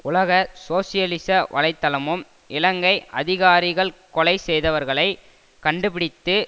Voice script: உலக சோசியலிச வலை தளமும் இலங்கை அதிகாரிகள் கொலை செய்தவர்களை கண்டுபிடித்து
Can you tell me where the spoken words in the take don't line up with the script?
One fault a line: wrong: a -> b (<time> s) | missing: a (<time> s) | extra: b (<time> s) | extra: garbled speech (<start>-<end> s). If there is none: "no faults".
no faults